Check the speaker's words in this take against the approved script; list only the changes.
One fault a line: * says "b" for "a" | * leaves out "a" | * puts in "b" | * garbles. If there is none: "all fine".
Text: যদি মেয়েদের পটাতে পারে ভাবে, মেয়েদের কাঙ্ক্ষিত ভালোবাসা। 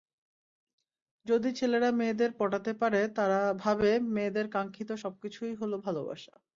* puts in "ছেলেরা"
* puts in "তারা"
* puts in "সবকিছুই হলো"